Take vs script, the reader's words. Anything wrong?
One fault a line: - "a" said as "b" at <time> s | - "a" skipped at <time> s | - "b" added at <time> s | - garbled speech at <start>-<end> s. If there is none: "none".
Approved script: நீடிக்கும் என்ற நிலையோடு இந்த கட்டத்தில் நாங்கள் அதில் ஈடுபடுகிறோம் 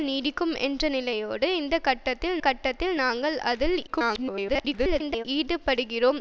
- "கட்டத்தில்" added at 2.4 s
- garbled speech at 3.9-5.2 s